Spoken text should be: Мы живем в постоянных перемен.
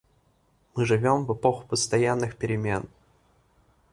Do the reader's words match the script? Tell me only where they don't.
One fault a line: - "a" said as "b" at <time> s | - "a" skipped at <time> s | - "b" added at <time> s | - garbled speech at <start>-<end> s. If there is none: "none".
- "эпоху" added at 1.3 s